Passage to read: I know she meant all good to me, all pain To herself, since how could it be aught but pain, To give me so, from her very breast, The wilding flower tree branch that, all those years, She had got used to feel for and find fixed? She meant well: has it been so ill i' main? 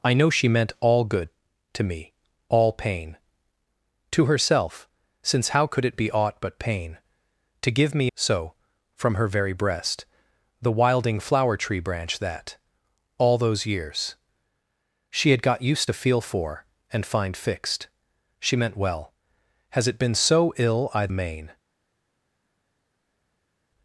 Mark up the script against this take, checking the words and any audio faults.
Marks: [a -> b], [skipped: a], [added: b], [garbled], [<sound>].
I know she meant all good to me, all pain To herself, since how could it be aught but pain, To give me so, from her very breast, The wilding flower tree branch that, all those years, She had got used to feel for and find fixed? She meant well: has it been so ill i' main?